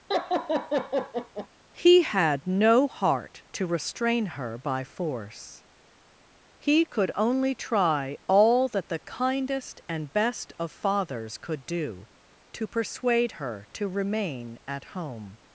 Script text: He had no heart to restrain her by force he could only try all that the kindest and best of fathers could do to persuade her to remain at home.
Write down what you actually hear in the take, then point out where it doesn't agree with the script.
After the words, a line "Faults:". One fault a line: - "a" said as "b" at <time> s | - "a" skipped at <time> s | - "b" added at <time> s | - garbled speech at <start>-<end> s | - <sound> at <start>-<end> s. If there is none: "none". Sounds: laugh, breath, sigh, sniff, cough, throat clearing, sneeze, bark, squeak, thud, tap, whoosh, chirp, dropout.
He had no heart to restrain her by force he could only try all that the kindest and best of fathers could do to persuade her to remain at home.
Faults:
- laugh at 0.1-1.5 s